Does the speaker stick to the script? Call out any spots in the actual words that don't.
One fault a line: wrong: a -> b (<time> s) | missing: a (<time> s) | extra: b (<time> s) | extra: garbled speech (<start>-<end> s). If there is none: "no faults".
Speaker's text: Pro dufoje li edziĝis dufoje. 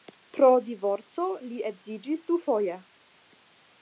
wrong: dufoje -> divorco (0.7 s)